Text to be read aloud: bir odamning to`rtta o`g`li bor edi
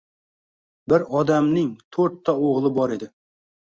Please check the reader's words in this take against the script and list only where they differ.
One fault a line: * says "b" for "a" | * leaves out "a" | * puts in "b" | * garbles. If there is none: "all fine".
all fine